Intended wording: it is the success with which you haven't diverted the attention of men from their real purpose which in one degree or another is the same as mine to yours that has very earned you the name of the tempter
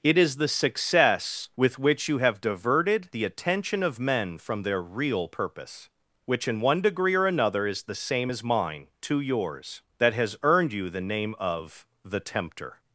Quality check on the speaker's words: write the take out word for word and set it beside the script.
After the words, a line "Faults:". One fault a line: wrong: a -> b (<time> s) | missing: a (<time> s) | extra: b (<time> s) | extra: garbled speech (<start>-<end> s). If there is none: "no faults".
it is the success with which you have diverted the attention of men from their real purpose which in one degree or another is the same as mine to yours that has earned you the name of the tempter
Faults:
wrong: haven't -> have (2.2 s)
missing: very (10.4 s)